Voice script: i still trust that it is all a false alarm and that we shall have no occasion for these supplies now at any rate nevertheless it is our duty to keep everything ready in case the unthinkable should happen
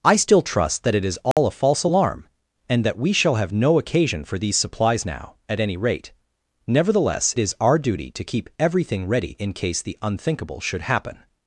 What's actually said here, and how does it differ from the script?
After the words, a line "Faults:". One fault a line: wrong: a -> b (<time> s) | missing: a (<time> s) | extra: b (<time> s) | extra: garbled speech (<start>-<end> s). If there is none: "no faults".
i still trust that it is all a false alarm and that we shall have no occasion for these supplies now at any rate nevertheless is our duty to keep everything ready in case the unthinkable should happen
Faults:
missing: it (7.3 s)